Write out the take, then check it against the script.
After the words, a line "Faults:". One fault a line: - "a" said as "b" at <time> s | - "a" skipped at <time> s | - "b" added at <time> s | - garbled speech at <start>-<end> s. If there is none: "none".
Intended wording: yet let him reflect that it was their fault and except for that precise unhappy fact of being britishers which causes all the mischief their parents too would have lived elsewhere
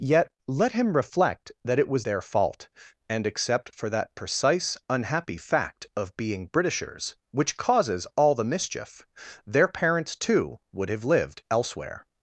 yet let him reflect that it was their fault and except for that precise unhappy fact of being britishers which causes all the mischief their parents too would have lived elsewhere
Faults:
none